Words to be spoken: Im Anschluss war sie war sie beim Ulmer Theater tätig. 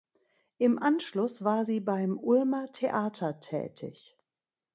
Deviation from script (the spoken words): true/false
true